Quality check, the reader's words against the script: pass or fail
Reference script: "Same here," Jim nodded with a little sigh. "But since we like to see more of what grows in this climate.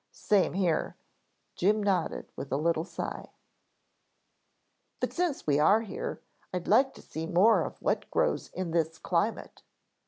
fail